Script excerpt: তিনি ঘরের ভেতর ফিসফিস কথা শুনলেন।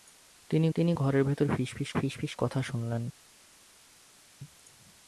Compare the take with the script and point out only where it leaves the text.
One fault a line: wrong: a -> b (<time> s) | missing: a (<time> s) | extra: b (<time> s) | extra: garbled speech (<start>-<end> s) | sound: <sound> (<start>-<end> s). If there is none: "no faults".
extra: তিনি (0.7 s)
extra: ফিসফিস (2.0 s)